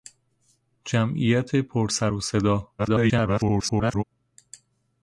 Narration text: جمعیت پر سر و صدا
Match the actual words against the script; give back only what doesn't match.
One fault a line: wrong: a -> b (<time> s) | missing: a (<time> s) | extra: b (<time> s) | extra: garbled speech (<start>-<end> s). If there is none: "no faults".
extra: garbled speech (2.8-4.0 s)